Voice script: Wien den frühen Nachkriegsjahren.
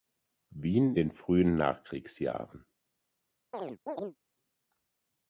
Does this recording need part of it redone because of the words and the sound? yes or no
yes